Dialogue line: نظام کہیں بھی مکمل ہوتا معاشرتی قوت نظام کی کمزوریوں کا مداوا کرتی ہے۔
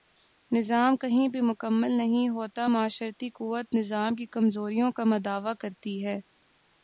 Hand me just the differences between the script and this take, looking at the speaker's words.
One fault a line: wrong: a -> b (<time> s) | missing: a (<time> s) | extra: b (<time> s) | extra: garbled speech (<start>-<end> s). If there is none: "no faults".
extra: نہیں (1.9 s)